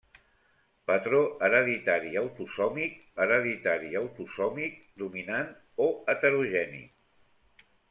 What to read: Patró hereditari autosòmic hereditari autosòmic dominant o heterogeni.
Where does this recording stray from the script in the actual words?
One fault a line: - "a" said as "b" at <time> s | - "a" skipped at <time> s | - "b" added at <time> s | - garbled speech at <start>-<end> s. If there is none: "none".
none